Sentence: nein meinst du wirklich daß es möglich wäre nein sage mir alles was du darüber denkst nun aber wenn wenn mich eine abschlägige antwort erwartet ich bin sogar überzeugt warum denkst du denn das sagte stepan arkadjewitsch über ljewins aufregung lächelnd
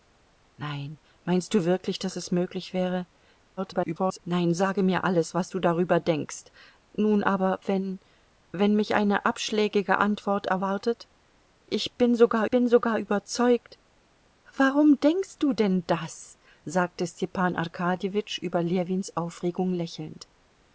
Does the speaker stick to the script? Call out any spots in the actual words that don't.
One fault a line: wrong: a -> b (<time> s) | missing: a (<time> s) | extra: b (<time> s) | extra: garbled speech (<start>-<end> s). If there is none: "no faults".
extra: garbled speech (3.6-4.2 s)
extra: bin sogar (12.5 s)